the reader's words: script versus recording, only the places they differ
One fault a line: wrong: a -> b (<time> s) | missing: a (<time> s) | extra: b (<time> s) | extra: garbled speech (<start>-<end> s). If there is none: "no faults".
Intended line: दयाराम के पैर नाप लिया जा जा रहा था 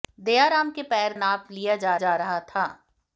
no faults